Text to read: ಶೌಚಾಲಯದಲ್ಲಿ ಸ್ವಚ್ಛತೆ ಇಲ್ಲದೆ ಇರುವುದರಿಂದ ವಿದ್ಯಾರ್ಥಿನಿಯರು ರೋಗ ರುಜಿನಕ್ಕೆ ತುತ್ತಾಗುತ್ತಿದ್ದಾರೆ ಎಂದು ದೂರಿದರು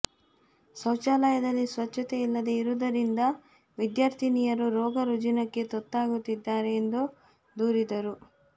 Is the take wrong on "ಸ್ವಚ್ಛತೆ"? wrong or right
right